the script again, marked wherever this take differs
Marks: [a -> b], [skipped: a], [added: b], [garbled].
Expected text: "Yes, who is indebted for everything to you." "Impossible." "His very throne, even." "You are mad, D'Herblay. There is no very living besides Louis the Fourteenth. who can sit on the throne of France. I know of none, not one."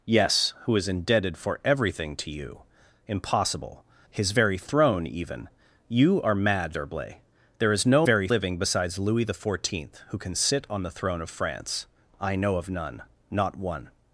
"Yes, who is indebted for everything to you." "Impossible." "His very throne, even." "You are mad, D'Herblay. There is no very living besides Louis the Fourteenth. who can sit on the throne of France. I know of none, not one."